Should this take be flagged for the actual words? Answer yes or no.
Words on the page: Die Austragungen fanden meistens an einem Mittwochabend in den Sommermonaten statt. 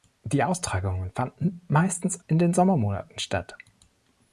yes